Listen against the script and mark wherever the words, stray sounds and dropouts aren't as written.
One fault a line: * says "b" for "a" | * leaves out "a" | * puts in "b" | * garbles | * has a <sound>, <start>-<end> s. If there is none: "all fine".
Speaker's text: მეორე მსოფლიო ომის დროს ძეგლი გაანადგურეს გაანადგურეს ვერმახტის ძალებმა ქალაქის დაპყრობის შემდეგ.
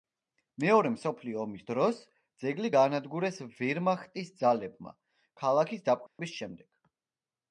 * leaves out "გაანადგურეს"
* has a dropout, 6.1-6.2 s